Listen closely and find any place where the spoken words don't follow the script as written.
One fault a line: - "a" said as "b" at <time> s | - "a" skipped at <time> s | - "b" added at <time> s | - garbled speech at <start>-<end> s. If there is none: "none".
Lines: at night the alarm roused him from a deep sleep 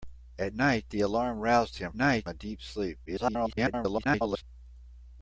- "from" said as "night" at 2.0 s
- garbled speech at 3.1-4.4 s